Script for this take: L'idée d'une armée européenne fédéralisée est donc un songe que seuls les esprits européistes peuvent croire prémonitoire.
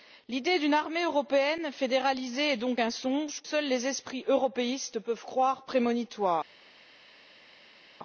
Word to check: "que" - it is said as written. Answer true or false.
false